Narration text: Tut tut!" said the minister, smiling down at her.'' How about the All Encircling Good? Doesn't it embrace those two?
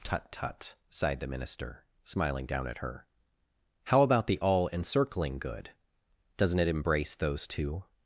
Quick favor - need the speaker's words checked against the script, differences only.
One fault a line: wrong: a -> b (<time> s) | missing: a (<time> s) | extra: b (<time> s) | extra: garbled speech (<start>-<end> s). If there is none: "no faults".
wrong: said -> sighed (0.9 s)